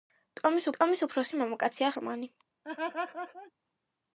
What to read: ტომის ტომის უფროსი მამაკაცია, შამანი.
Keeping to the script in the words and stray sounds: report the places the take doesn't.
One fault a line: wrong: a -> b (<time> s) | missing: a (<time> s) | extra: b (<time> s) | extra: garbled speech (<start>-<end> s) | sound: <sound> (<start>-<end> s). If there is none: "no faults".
sound: laugh (2.6-3.5 s)